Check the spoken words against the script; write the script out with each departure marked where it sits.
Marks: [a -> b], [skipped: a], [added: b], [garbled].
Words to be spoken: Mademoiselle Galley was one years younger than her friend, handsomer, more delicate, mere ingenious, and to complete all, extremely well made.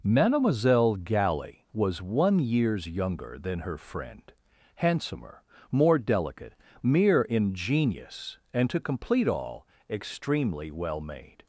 Mademoiselle Galley was one years younger than her friend, handsomer, more delicate, mere ingenious, and to complete all, extremely well made.